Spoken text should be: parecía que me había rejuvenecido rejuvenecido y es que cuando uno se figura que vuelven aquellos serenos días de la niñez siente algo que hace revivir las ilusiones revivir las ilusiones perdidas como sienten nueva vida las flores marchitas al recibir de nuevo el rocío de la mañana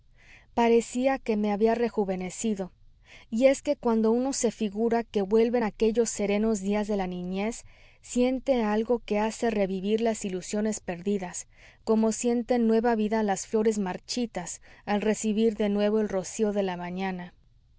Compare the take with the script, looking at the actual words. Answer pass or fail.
fail